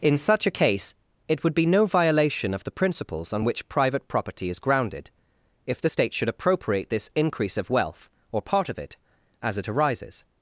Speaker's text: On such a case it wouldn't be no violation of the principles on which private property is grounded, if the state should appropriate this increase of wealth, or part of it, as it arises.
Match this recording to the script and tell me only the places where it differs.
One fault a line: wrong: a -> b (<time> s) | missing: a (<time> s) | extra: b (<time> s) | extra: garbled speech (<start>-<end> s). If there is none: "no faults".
wrong: On -> In (0.0 s)
wrong: wouldn't -> would (1.4 s)